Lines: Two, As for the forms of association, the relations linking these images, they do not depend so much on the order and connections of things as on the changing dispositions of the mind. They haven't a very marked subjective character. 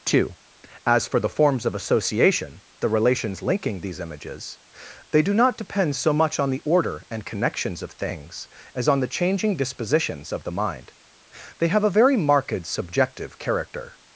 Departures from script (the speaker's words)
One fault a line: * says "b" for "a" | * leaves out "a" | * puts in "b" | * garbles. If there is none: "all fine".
* says "have" for "haven't"